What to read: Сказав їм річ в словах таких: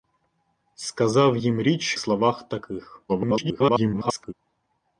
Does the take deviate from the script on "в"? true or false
true